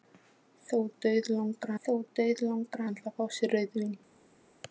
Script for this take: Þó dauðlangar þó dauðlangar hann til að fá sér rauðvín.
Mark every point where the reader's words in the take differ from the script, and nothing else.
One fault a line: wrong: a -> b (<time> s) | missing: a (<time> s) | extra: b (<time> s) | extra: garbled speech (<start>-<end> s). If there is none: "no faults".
no faults